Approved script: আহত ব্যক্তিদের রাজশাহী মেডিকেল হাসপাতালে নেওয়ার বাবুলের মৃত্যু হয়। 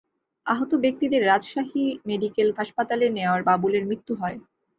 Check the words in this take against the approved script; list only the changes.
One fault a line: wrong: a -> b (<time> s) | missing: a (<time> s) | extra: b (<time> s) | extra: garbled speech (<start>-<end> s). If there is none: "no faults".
no faults